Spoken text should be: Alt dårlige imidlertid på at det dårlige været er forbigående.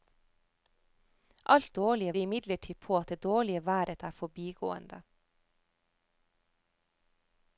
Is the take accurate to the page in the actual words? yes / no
yes